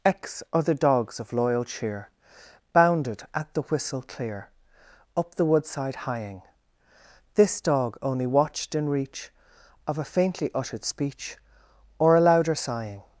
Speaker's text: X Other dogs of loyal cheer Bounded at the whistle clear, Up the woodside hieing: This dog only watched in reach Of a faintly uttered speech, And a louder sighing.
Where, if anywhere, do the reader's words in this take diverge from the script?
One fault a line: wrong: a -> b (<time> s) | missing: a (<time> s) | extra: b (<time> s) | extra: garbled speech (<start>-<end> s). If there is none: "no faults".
wrong: And -> Or (12.0 s)